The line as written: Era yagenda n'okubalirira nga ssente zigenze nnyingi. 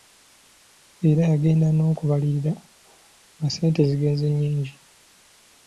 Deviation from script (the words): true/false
false